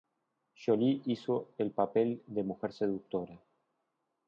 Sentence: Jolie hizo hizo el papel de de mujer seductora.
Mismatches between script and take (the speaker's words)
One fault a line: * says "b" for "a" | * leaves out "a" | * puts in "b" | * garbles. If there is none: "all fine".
* leaves out "hizo"
* leaves out "de"